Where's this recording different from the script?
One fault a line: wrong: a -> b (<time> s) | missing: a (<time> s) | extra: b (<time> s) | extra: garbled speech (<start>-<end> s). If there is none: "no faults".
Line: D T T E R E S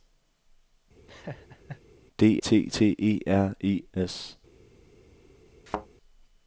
no faults